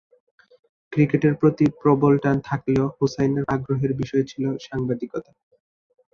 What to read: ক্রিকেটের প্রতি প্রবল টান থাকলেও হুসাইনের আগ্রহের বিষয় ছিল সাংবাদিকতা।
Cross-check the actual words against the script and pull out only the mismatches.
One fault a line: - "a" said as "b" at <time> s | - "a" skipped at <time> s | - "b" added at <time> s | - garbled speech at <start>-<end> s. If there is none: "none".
none